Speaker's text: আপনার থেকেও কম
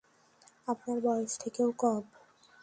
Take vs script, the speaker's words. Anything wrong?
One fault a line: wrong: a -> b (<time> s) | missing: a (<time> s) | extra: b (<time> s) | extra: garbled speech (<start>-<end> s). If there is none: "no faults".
extra: বয়স (1.0 s)